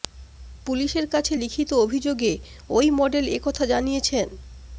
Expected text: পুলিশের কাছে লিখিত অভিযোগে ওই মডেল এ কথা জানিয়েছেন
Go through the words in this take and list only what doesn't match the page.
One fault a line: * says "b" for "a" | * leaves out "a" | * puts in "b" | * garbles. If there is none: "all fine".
all fine